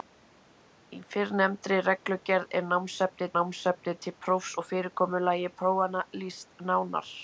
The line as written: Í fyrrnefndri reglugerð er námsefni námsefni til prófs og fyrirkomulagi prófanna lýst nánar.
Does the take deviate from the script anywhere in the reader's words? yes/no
no